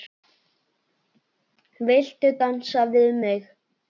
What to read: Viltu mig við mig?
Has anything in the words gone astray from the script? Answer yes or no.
yes